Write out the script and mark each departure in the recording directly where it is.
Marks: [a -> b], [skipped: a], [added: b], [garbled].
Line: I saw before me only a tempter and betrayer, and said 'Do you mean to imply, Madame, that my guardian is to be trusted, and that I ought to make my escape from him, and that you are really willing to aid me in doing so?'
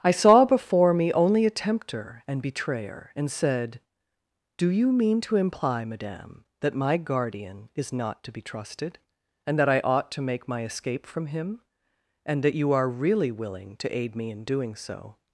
I saw before me only a tempter and betrayer, and said 'Do you mean to imply, Madame, that my guardian is [added: not] to be trusted, and that I ought to make my escape from him, and that you are really willing to aid me in doing so?'